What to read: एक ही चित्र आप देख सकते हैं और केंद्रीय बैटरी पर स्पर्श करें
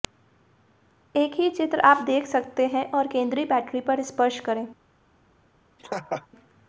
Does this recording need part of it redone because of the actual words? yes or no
no